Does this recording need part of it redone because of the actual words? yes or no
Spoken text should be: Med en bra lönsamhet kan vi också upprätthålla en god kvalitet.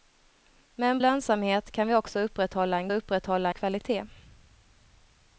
yes